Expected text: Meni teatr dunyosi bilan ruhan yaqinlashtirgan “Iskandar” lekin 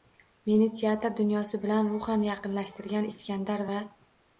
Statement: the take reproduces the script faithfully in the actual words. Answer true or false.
false